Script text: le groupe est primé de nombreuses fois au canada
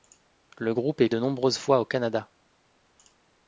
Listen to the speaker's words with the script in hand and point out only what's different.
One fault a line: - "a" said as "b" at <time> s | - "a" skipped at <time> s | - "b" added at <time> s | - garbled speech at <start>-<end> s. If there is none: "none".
- "primé" skipped at 1.1 s